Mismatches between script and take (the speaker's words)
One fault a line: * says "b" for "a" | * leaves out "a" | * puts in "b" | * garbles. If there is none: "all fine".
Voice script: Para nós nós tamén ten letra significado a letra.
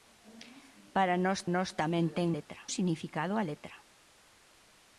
all fine